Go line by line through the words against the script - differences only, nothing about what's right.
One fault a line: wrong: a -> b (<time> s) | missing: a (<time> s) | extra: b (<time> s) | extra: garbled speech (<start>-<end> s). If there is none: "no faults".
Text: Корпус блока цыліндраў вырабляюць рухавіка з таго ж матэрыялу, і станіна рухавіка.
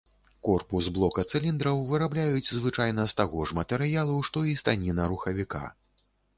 wrong: рухавіка -> звычайна (2.6 s)
extra: што (4.3 s)